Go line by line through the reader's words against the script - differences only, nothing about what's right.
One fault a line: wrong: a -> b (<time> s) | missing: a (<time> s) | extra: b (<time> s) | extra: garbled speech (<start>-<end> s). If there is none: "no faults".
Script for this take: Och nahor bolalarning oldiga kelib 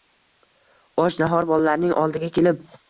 no faults